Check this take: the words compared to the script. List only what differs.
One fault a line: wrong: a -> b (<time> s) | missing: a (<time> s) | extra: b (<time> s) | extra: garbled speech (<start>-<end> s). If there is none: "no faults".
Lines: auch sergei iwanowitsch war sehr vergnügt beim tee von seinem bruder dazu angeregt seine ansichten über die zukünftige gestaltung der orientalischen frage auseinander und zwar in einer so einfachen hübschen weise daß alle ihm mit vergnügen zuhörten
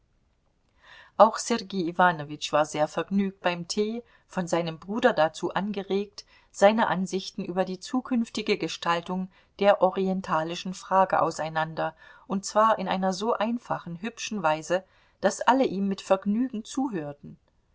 no faults